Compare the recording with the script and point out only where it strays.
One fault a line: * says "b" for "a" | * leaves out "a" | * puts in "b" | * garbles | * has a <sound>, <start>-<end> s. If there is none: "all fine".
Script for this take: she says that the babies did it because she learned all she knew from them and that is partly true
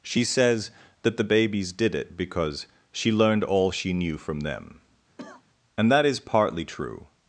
* has a cough, 5.2-5.4 s